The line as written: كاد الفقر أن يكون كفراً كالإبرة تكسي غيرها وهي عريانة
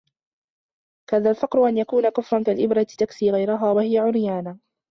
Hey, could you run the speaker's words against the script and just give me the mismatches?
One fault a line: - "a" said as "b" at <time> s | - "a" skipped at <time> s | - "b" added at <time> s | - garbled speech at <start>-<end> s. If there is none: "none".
none